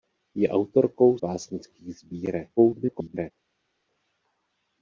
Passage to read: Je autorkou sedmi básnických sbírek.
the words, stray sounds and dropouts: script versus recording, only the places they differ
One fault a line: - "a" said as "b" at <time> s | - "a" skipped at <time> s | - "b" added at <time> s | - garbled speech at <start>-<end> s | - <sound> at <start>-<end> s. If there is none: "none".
- "sedmi" skipped at 1.2 s
- garbled speech at 2.6-3.3 s